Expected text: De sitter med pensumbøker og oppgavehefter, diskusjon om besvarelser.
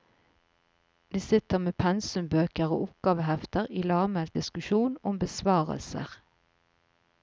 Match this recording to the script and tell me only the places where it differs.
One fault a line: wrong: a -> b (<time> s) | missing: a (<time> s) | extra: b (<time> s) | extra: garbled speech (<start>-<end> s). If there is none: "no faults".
extra: i lavmælt (3.7 s)